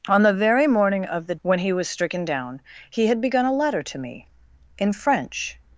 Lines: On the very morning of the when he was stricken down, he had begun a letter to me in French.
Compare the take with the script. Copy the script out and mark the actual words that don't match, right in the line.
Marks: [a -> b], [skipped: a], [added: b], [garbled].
On the very morning of the when he was stricken down, he had begun a letter to me in French.